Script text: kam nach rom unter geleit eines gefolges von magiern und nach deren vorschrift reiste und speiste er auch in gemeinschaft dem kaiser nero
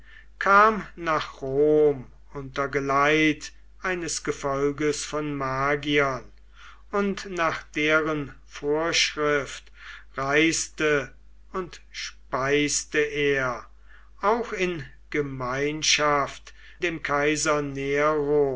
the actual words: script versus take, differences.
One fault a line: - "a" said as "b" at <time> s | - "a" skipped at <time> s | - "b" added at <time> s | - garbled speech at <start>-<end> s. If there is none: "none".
none